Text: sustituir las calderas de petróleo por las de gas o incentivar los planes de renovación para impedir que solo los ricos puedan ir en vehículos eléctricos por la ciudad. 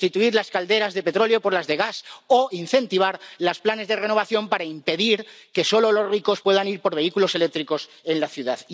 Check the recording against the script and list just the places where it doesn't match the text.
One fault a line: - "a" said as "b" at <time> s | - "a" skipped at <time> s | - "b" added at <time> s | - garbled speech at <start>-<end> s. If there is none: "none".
none